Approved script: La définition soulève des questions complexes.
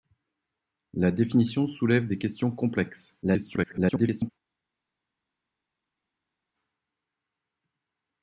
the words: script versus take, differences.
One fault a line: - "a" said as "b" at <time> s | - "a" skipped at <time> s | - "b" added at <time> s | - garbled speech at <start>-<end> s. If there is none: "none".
- garbled speech at 3.2-4.3 s